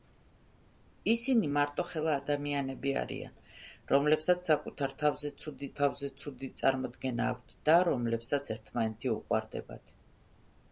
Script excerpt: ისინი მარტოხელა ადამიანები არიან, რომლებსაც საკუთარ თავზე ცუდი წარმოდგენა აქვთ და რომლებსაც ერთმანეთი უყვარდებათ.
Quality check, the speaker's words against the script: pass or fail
fail